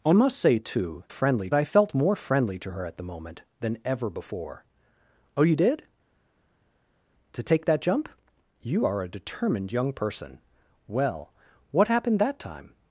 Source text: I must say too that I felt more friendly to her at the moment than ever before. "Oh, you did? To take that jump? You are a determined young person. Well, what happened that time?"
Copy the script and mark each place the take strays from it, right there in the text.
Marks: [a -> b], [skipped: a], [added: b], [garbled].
I must say too [that -> friendly] I felt more friendly to her at the moment than ever before. "Oh, you did? To take that jump? You are a determined young person. Well, what happened that time?"